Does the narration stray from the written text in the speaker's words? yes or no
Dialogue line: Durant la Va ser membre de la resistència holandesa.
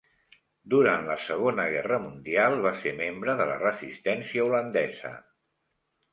yes